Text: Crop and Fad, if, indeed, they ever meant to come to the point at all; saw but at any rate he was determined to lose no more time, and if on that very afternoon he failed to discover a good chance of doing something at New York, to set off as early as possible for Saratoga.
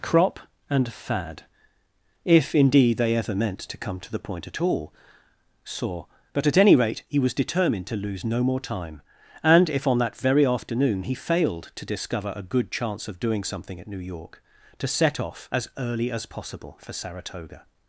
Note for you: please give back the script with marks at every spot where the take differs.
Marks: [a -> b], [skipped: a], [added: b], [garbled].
Crop and Fad, if, indeed, they ever meant to come to the point at all; saw but at any rate he was determined to lose no more time, and if on that very afternoon he failed to discover a good chance of doing something at New York, to set off as early as possible for Saratoga.